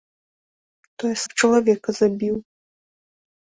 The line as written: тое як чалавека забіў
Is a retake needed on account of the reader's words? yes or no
no